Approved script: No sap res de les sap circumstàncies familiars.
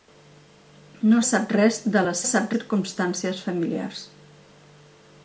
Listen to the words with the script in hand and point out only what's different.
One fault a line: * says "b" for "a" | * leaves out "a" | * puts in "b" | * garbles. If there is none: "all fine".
all fine